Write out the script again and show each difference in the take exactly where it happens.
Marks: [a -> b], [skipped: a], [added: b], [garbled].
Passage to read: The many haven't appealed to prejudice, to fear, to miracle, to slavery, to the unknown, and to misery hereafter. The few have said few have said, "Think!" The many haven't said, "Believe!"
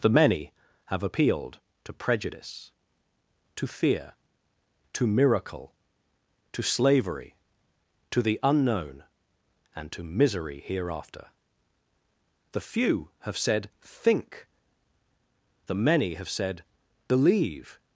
The many [haven't -> have] appealed to prejudice, to fear, to miracle, to slavery, to the unknown, and to misery hereafter. The few have said [skipped: few have said,] "Think!" The many [haven't -> have] said, "Believe!"